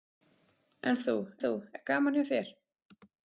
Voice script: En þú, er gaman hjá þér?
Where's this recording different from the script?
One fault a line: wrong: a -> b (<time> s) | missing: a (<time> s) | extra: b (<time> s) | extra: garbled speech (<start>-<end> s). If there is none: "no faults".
extra: þú (1.4 s)